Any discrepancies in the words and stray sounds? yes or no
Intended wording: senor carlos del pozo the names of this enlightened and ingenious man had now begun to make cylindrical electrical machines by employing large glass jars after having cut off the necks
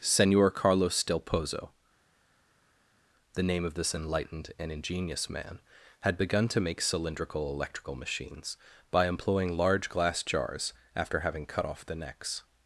yes